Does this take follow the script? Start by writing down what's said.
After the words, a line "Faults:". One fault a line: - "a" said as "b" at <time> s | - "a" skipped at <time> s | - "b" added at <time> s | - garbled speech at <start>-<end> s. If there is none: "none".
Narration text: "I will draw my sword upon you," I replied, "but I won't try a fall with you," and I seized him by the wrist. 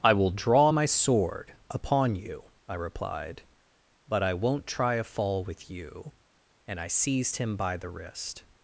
"I will draw my sword upon you," I replied, "but I won't try a fall with you," and I seized him by the wrist.
Faults:
none